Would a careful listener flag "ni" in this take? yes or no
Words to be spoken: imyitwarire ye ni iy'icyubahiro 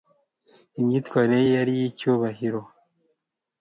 yes